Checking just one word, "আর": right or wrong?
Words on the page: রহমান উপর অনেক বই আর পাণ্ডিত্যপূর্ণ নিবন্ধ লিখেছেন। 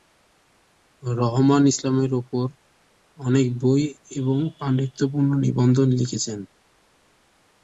wrong